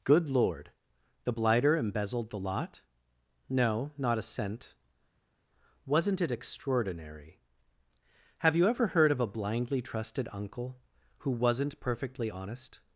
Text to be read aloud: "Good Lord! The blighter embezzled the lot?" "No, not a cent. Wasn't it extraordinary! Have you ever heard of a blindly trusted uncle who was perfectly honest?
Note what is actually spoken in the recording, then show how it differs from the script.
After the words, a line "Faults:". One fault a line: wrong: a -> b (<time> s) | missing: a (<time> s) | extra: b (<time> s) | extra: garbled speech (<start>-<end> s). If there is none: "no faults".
"Good Lord! The blighter embezzled the lot?" "No, not a cent. Wasn't it extraordinary! Have you ever heard of a blindly trusted uncle who wasn't perfectly honest?
Faults:
wrong: was -> wasn't (11.3 s)